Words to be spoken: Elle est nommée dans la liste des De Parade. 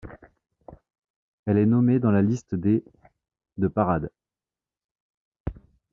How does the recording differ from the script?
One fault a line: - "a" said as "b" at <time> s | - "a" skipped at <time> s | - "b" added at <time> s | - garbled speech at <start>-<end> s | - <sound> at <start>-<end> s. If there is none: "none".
none